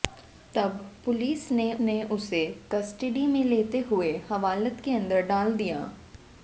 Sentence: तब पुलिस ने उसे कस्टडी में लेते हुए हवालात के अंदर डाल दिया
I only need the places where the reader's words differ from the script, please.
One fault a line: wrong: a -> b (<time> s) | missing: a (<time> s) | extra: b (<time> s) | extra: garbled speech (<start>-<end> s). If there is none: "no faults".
extra: ने (1.8 s)